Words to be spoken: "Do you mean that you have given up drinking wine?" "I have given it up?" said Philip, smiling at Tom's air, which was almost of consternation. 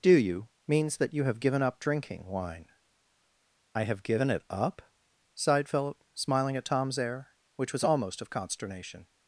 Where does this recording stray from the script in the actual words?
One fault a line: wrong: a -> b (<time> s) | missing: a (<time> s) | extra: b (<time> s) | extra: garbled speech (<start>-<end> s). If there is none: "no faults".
wrong: mean -> means (0.7 s)
wrong: said -> sighed (5.3 s)